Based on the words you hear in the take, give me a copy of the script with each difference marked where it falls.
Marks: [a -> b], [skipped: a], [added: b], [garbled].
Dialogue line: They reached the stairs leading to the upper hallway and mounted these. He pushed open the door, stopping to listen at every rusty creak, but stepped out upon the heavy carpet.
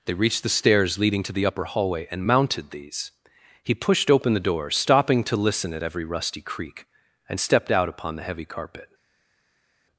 They reached the stairs leading to the upper hallway and mounted these. He pushed open the door, stopping to listen at every rusty creak, [but -> and] stepped out upon the heavy carpet.